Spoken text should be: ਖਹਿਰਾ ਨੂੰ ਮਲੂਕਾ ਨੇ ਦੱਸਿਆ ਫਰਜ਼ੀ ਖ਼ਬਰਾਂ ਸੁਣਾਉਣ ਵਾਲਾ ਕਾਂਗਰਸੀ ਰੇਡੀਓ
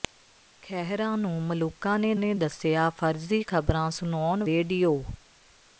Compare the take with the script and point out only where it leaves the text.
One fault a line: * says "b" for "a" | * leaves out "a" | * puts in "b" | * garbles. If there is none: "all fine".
* puts in "ਨੇ"
* leaves out "ਵਾਲਾ ਕਾਂਗਰਸੀ"